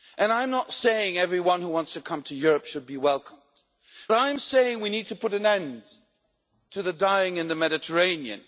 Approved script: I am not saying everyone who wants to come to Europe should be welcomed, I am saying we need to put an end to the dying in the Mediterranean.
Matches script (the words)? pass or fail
pass